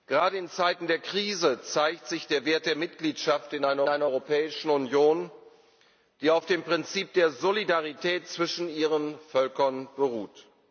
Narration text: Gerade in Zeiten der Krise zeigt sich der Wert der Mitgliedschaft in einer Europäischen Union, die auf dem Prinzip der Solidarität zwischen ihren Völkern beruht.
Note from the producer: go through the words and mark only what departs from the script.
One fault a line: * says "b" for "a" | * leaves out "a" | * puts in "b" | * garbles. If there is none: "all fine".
* puts in "einer"